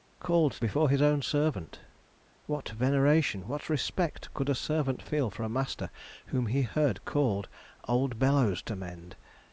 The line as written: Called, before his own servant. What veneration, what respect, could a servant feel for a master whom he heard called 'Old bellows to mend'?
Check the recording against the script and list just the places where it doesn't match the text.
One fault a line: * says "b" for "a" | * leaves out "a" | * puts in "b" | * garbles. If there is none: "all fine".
all fine